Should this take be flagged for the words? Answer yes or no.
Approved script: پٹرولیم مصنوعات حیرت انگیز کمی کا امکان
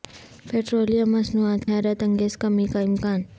no